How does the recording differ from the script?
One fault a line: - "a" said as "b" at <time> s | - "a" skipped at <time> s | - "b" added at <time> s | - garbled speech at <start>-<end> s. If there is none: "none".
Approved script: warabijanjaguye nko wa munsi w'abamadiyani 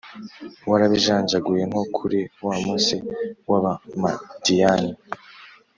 - "kuri" added at 1.9 s